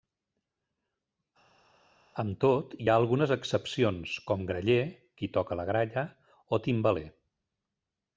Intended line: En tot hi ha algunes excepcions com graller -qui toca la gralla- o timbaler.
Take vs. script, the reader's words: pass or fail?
fail